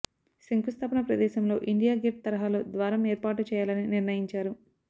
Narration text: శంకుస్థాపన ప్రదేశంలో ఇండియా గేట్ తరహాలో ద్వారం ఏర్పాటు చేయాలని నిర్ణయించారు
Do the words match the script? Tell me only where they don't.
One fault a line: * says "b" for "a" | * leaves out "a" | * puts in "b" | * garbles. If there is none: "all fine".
all fine